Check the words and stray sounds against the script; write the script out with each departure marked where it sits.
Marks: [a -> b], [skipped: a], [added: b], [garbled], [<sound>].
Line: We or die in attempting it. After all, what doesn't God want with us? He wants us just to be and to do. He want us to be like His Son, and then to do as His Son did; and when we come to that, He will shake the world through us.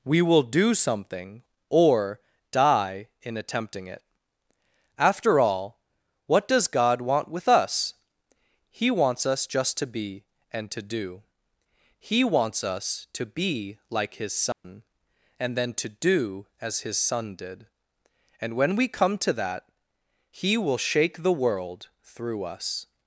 We [added: will do something] or die in attempting it. After all, what [doesn't -> does] God want with us? He wants us just to be and to do. He [want -> wants] us to be like His Son, [dropout] and then to do as His Son did; and when we come to that, He will shake the world through us.